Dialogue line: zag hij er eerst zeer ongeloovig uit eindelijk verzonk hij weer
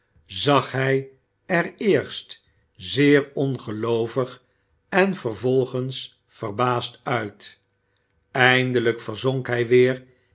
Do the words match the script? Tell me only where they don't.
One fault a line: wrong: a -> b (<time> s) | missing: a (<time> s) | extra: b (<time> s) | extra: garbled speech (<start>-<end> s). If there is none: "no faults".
extra: en vervolgens verbaasd (4.9 s)